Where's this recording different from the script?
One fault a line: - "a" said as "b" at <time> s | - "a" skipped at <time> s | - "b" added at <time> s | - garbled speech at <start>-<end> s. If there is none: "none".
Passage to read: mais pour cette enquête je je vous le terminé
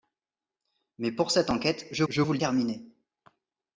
none